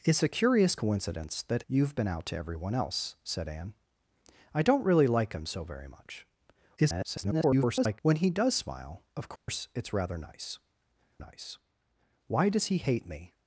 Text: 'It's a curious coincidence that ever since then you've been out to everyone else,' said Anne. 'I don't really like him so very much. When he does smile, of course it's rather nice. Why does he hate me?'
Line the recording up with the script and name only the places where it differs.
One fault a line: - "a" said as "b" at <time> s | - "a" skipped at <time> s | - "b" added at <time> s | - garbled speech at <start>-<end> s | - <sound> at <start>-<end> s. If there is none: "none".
- "ever since then" skipped at 1.6 s
- garbled speech at 6.8-8.0 s
- dropout at 9.4-9.5 s
- "nice" added at 11.2 s